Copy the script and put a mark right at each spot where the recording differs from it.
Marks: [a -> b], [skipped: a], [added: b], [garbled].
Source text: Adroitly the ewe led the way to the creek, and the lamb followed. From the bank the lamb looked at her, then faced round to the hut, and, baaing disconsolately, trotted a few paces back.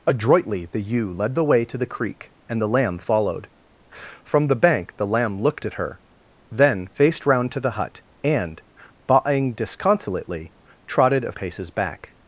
Adroitly the ewe led the way to the creek, and the lamb followed. From the bank the lamb looked at her, then faced round to the hut, and, baaing disconsolately, trotted a [skipped: few] paces back.